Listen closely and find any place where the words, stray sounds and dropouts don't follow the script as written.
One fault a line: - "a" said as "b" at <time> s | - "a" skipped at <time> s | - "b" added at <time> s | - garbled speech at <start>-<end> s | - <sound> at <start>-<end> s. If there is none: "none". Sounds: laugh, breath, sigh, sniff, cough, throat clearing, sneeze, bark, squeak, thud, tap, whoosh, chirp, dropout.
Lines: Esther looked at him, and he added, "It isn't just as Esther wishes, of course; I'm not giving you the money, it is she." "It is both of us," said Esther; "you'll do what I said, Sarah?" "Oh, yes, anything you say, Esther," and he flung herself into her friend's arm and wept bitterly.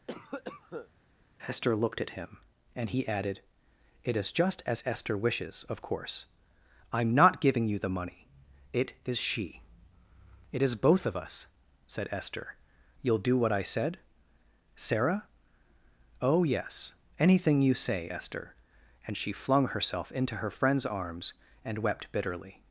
- cough at 0.1-0.9 s
- "isn't" said as "is" at 4.1 s
- "he" said as "she" at 19.2 s
- "arm" said as "arms" at 20.9 s